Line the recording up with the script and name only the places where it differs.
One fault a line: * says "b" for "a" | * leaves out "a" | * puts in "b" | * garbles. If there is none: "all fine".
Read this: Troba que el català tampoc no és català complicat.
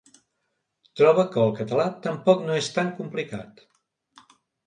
* says "tan" for "català"